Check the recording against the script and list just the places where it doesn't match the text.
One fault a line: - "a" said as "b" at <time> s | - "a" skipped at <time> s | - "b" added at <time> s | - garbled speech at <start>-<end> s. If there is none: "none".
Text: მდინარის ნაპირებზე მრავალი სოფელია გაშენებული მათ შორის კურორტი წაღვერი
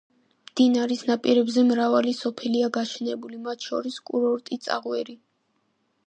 none